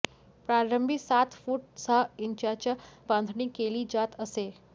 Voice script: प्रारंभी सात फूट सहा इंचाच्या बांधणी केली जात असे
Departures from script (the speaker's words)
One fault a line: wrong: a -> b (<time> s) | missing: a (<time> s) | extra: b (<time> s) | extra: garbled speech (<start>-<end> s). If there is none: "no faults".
no faults